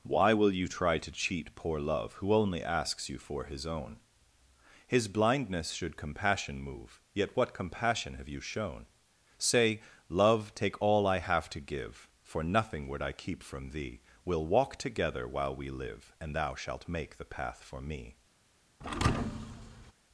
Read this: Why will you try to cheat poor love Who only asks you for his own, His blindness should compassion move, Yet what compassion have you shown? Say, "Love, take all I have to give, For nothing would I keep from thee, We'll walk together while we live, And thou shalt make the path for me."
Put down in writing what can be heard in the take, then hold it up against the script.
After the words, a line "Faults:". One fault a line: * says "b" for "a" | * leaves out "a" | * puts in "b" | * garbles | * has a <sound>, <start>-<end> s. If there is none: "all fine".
Why will you try to cheat poor love Who only asks you for his own, His blindness should compassion move, Yet what compassion have you shown? Say, "Love, take all I have to give, For nothing would I keep from thee, We'll walk together while we live, And thou shalt make the path for me."
Faults:
* has a thud, 18.8-19.9 s